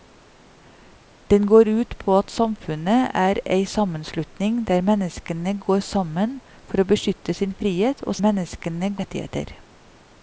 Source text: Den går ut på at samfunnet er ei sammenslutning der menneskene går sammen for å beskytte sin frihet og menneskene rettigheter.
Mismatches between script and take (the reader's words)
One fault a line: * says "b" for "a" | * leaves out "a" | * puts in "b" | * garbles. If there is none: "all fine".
all fine